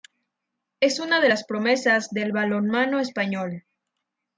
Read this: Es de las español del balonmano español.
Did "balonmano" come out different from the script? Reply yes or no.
no